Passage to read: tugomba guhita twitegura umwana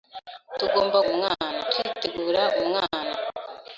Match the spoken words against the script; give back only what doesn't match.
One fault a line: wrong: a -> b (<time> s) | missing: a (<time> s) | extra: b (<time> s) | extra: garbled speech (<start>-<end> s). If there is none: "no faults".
wrong: guhita -> umwana (1.1 s)